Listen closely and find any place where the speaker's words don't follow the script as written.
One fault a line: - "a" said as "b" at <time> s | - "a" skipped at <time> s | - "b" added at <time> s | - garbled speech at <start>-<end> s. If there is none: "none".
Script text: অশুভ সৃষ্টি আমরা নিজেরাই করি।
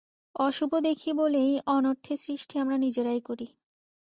- "দেখি বলেই অনর্থের" added at 0.8 s